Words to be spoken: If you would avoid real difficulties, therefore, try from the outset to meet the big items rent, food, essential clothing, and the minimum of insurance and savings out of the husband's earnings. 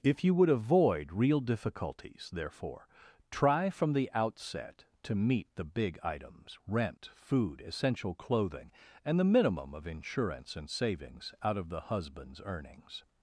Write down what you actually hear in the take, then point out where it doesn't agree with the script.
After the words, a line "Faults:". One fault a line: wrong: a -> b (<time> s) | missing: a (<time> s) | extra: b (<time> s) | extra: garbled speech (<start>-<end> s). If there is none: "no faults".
If you would avoid real difficulties, therefore, try from the outset to meet the big items rent, food, essential clothing, and the minimum of insurance and savings out of the husband's earnings.
Faults:
no faults